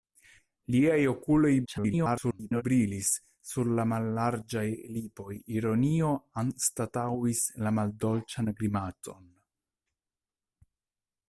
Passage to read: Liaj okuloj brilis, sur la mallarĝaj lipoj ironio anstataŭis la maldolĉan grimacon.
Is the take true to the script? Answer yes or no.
no